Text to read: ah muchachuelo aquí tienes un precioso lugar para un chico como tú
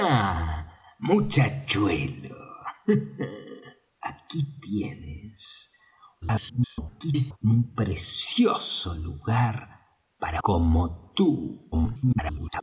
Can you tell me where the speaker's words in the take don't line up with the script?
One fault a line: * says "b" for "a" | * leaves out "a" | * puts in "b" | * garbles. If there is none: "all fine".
* garbles
* leaves out "un chico"
* garbles